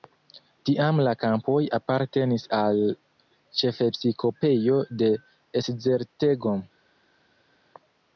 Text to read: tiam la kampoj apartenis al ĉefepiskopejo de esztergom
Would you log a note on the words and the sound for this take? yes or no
no